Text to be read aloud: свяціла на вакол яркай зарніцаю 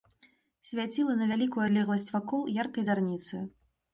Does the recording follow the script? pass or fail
fail